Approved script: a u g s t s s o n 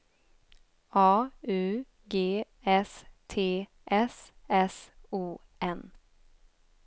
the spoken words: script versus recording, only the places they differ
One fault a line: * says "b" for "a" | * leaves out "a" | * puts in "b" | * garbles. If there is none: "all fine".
all fine